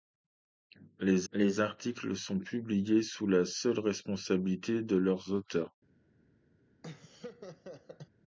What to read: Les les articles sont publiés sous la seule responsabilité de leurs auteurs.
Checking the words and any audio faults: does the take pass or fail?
fail